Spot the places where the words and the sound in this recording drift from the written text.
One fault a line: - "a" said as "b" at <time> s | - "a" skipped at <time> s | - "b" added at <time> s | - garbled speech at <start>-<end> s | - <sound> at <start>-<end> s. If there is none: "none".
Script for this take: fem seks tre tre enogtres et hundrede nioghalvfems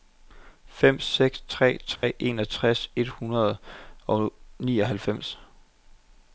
- dropout at 2.0-2.0 s
- "og" added at 4.1 s